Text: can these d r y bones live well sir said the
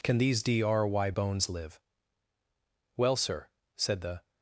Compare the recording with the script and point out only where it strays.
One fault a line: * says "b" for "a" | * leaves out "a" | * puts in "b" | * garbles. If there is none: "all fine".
all fine